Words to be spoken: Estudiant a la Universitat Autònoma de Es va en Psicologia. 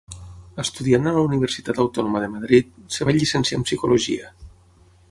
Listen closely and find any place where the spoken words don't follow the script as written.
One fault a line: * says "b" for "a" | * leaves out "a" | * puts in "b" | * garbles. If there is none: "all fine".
* puts in "Madrid"
* puts in "llicenciar"